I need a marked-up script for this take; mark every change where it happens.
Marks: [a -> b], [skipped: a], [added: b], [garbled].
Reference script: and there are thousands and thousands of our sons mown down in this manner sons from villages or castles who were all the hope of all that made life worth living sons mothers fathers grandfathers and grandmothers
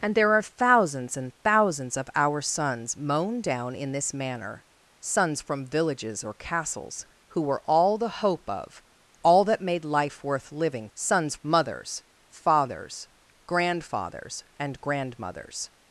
and there are thousands and thousands of our sons mown down in this manner sons from villages or castles who were all the hope of all that made life worth living sons mothers fathers grandfathers and grandmothers